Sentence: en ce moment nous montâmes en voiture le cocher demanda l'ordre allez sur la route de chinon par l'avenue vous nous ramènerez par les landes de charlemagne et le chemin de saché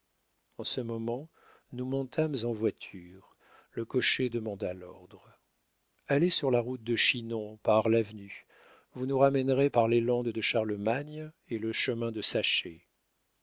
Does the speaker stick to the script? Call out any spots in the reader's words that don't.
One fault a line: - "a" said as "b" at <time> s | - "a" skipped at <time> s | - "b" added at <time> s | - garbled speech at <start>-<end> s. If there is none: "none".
none